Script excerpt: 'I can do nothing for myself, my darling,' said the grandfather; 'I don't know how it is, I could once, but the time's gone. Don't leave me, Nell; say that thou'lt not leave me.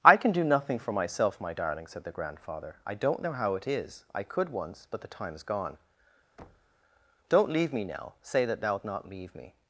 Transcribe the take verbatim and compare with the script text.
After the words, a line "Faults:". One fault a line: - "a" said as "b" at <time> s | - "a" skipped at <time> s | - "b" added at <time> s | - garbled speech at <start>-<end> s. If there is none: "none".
'I can do nothing for myself, my darling,' said the grandfather; 'I don't know how it is, I could once, but the time's gone. Don't leave me, Nell; say that thou'lt not leave me.
Faults:
none